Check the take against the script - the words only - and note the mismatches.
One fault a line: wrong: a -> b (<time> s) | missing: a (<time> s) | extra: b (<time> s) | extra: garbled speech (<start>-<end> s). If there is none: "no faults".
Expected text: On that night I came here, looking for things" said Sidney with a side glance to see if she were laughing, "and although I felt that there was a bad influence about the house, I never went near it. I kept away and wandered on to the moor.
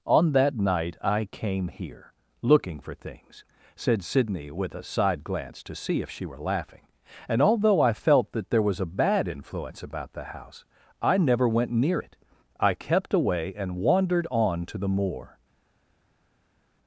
no faults